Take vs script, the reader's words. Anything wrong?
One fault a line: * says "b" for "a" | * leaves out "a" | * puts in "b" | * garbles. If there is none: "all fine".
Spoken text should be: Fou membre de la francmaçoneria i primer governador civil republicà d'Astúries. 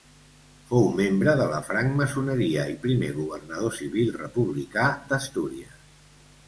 all fine